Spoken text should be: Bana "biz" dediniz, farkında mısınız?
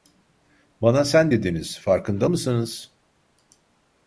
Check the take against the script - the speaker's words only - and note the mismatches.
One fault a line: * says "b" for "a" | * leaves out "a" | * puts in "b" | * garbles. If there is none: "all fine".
* says "sen" for "biz"